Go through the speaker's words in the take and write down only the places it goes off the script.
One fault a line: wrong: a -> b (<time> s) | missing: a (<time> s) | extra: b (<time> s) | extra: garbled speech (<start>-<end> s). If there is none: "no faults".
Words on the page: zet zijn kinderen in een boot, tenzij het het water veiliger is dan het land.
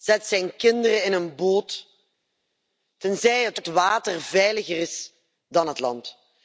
no faults